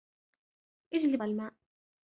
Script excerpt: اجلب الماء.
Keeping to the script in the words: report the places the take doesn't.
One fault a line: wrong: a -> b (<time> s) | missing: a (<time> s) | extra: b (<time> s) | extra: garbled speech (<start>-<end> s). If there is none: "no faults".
no faults